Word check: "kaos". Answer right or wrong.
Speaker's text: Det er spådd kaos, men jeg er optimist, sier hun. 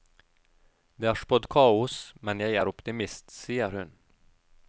right